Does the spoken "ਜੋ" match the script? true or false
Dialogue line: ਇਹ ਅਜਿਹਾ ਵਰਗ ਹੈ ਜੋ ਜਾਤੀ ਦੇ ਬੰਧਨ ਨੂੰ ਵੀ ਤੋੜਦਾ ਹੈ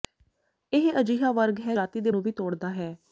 false